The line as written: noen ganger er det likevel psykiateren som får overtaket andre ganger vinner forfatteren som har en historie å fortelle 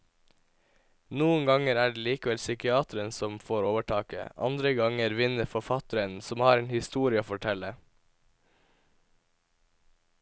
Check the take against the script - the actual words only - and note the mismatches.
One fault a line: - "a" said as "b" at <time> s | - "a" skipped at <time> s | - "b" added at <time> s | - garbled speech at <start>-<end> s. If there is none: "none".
none